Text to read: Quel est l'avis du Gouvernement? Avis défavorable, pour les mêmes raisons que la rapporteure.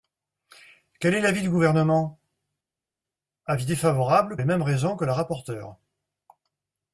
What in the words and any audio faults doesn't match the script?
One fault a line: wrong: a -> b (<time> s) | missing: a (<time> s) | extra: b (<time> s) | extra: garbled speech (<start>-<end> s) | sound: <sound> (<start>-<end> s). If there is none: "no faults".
missing: pour (4.4 s)